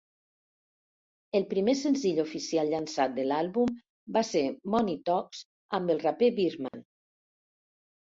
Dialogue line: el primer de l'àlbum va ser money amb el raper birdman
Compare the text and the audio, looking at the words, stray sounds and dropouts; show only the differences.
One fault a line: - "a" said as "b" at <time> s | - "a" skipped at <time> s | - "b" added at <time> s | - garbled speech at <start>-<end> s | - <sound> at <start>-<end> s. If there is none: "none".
- "senzill oficial llançat" added at 1.8 s
- "talks" added at 5.1 s
- dropout at 6.7-6.7 s